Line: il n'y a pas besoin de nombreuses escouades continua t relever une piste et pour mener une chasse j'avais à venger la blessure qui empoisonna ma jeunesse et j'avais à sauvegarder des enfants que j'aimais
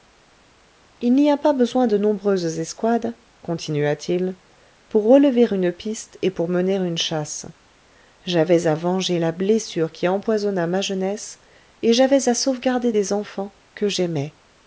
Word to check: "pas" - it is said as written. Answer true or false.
true